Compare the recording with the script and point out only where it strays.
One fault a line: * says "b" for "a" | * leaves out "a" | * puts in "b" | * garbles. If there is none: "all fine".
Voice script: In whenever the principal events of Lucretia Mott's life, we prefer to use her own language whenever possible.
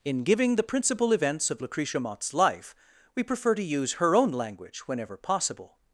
* says "giving" for "whenever"